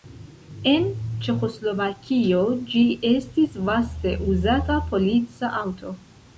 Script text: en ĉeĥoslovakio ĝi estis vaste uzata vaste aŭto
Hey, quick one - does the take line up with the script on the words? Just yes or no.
no